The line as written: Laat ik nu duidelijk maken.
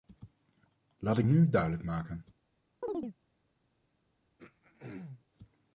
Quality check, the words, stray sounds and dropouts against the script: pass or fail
fail